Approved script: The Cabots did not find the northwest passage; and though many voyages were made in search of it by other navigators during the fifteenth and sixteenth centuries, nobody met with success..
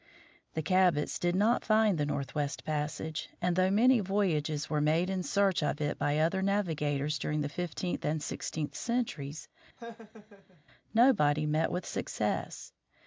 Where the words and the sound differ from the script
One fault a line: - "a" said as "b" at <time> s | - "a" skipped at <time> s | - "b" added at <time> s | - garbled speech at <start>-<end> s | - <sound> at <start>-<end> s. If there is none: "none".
- laugh at 9.8-10.6 s